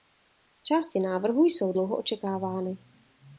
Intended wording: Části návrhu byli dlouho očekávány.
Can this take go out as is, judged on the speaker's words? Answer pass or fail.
fail